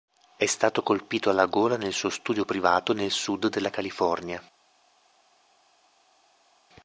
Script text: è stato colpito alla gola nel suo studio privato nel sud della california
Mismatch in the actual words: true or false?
false